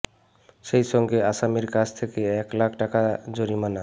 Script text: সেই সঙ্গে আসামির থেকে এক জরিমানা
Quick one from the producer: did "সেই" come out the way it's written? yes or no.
yes